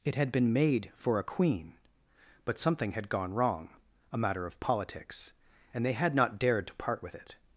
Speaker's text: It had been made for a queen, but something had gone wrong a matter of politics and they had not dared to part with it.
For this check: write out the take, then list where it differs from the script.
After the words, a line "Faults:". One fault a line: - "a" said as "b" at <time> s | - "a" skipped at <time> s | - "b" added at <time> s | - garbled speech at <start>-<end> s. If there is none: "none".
It had been made for a queen, but something had gone wrong a matter of politics and they had not dared to part with it.
Faults:
none